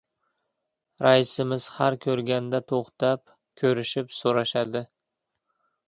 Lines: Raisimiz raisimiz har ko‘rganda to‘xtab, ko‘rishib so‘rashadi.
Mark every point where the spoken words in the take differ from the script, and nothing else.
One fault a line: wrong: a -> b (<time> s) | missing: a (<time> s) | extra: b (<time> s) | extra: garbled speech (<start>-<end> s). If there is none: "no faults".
missing: raisimiz (1.7 s)